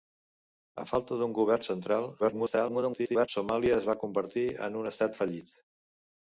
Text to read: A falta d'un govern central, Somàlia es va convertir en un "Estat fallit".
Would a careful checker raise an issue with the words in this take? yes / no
yes